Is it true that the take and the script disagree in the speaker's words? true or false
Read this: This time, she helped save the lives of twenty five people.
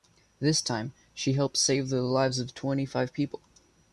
false